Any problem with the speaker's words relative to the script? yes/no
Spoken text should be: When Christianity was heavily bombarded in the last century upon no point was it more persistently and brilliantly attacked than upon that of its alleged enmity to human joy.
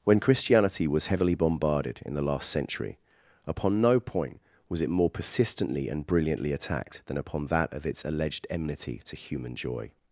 no